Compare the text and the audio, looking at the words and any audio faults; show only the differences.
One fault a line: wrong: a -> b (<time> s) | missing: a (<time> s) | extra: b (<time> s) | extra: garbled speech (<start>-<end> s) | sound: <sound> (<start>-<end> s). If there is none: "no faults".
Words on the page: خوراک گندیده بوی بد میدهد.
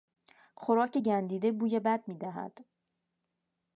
no faults